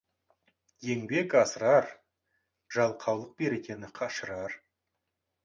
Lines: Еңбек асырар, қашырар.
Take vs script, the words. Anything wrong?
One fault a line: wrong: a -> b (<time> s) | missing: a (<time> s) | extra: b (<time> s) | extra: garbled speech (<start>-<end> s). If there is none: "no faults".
extra: жалқаулық берекені (2.8 s)